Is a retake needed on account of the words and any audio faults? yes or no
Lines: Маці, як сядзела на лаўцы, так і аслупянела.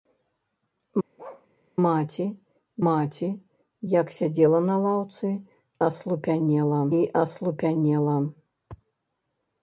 yes